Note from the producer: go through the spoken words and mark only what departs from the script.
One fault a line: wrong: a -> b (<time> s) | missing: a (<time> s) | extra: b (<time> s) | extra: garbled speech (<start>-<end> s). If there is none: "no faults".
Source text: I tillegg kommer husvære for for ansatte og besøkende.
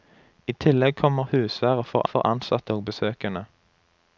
no faults